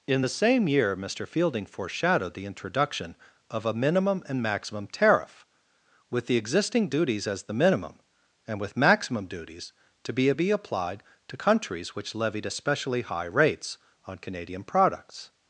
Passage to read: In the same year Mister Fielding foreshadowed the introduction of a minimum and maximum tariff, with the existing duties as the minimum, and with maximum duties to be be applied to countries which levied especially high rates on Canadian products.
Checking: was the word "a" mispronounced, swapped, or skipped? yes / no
no